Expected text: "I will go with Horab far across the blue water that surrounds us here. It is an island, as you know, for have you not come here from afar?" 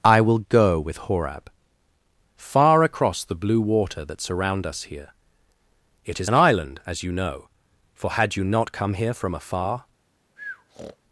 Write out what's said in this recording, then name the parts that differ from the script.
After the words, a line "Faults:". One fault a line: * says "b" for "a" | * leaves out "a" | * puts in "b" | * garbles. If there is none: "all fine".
"I will go with Horab far across the blue water that surround us here. It is an island, as you know, for had you not come here from afar?"
Faults:
* says "surround" for "surrounds"
* says "had" for "have"